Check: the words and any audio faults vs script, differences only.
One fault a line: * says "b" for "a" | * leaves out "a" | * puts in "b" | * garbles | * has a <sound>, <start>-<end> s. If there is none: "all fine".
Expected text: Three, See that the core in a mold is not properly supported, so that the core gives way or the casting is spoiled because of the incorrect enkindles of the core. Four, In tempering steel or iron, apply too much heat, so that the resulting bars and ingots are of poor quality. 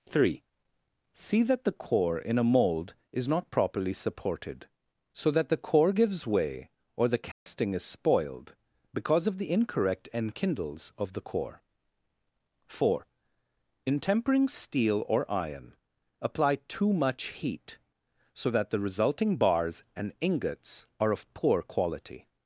* has a dropout, 7.3-7.5 s